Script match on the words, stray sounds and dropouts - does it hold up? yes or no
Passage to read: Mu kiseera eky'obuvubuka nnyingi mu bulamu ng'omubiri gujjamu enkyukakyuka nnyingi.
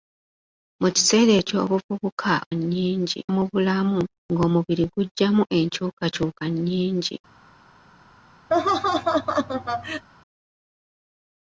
no